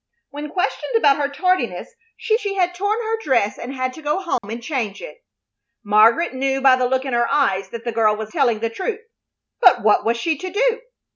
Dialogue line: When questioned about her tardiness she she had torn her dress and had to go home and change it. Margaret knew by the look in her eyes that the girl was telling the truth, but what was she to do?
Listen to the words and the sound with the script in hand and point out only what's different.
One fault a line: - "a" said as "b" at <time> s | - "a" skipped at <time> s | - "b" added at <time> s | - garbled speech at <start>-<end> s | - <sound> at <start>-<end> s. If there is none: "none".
- dropout at 4.4-4.4 s